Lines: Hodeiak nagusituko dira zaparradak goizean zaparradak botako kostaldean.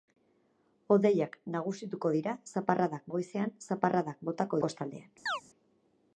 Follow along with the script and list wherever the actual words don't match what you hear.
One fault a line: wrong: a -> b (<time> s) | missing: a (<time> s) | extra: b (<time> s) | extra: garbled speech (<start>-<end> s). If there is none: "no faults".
no faults